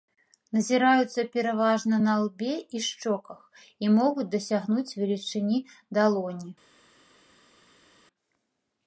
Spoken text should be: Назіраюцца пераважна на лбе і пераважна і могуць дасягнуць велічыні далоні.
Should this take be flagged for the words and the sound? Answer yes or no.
yes